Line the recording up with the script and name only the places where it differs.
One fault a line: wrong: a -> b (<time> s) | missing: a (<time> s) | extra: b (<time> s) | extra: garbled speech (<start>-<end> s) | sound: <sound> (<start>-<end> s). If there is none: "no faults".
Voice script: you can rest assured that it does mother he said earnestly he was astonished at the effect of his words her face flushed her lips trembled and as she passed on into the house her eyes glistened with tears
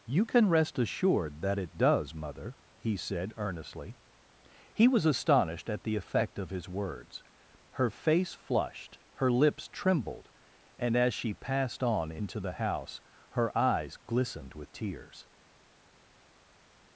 no faults